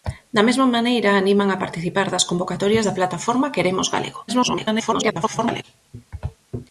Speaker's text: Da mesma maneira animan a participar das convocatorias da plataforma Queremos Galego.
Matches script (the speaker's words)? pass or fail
fail